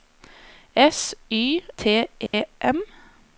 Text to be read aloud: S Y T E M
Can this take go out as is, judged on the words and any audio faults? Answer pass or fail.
fail